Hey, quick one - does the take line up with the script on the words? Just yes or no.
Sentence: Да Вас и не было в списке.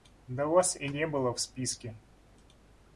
yes